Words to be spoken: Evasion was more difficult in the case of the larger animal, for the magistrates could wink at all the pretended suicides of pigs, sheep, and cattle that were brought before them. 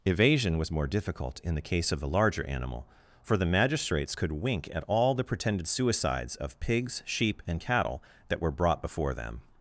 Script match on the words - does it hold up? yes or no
yes